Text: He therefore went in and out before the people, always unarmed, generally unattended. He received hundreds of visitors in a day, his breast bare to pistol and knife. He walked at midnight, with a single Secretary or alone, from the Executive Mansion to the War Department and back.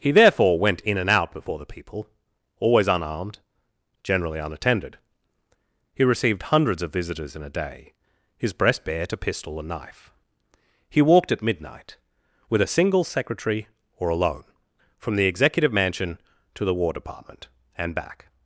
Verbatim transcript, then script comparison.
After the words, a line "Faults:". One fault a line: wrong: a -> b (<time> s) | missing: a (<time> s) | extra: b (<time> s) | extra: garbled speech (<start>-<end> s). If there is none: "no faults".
He therefore went in and out before the people, always unarmed, generally unattended. He received hundreds of visitors in a day, his breast bare to pistol and knife. He walked at midnight, with a single Secretary or alone, from the Executive Mansion to the War Department and back.
Faults:
no faults